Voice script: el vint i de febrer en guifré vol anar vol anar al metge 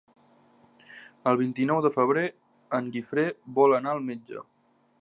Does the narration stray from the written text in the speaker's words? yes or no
yes